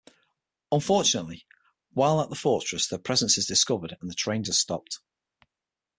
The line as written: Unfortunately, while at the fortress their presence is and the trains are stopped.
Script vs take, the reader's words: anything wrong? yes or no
yes